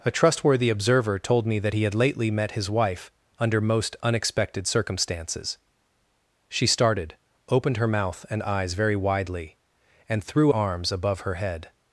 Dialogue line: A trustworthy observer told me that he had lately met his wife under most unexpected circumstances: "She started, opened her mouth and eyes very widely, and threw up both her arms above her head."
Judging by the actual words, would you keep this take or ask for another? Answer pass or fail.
fail